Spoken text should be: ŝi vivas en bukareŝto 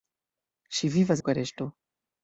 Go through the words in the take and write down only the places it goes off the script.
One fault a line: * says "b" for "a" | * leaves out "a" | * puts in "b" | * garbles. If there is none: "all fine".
* leaves out "en"